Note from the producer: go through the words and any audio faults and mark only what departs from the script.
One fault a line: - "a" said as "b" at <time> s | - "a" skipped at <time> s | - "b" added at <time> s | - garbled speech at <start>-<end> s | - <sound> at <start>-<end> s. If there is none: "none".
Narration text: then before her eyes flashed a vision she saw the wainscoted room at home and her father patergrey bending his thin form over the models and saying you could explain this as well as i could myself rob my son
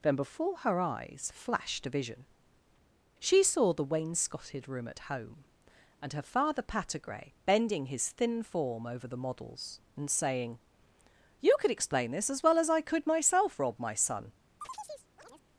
- chirp at 14.6-15.4 s